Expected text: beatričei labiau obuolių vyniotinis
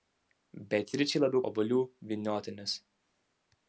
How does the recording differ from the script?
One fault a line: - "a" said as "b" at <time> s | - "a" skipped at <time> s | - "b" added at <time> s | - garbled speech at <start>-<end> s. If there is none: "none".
none